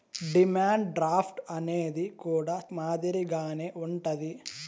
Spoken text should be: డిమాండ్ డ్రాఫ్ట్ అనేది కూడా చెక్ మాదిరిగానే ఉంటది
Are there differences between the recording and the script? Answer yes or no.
yes